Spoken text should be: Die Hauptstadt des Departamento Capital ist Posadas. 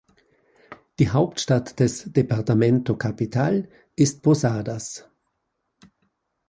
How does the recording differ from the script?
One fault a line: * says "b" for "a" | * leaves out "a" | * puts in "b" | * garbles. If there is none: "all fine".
all fine